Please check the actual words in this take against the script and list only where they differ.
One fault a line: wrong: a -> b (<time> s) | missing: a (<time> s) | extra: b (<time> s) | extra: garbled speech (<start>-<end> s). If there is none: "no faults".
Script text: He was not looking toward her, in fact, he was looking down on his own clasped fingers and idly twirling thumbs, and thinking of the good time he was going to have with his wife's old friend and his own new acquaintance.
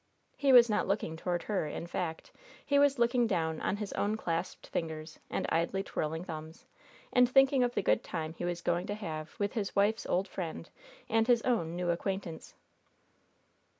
no faults